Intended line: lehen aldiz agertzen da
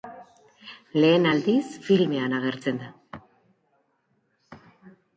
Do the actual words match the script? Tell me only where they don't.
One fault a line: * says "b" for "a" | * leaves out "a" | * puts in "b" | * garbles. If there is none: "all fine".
* puts in "filmean"